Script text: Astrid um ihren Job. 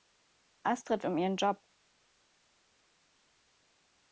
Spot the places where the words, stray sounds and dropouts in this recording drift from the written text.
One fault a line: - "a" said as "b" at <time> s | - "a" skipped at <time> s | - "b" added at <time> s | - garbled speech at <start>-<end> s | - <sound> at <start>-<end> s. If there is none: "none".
none